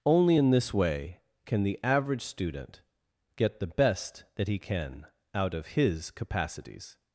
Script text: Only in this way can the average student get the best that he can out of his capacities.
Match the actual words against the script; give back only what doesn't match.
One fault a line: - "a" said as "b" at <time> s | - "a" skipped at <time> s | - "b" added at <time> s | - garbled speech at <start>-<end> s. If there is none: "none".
none